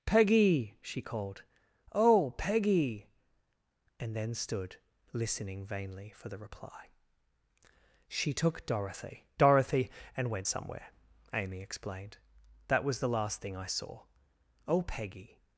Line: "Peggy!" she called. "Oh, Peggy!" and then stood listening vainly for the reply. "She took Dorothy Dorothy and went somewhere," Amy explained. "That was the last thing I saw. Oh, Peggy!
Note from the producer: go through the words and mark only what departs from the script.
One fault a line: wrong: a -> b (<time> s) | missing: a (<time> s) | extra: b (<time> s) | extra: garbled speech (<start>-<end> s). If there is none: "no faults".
no faults